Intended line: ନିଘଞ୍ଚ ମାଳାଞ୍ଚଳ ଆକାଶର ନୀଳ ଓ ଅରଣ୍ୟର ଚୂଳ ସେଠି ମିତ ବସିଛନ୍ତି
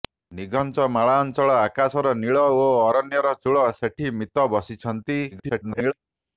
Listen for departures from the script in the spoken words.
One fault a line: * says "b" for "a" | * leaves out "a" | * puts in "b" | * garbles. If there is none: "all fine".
* garbles